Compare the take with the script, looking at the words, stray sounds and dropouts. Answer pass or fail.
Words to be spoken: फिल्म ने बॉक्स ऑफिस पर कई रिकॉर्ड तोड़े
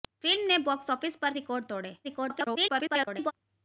fail